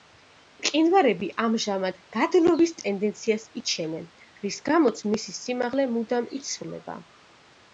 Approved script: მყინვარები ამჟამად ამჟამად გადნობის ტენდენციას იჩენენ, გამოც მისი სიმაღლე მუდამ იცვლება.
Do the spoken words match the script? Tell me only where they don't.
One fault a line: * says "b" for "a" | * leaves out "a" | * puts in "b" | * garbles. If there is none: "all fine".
* leaves out "ამჟამად"
* puts in "რის"